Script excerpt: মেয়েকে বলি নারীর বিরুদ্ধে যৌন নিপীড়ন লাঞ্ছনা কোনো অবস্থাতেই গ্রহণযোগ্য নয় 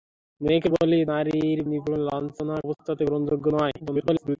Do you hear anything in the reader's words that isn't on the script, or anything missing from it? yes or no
yes